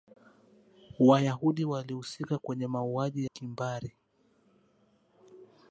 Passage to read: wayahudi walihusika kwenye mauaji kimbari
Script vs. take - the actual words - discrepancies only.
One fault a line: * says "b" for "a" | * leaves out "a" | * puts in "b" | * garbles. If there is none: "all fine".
all fine